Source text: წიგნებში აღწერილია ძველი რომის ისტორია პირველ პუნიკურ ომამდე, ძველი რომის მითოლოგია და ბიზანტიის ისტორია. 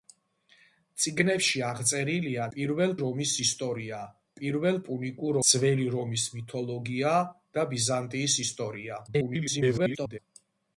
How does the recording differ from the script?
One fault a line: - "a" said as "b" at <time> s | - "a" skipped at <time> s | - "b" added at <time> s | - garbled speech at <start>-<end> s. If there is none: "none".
- "ძველი" said as "პირველ" at 2.5 s
- "ომამდე" skipped at 5.4 s
- garbled speech at 9.1-10.2 s